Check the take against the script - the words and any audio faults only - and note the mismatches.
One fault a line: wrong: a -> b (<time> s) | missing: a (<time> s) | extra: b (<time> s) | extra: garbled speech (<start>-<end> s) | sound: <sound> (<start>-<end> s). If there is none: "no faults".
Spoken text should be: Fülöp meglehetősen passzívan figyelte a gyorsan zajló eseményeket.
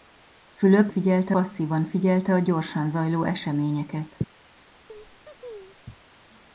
wrong: meglehetősen -> figyelte (0.9 s)
sound: laugh (4.9-5.8 s)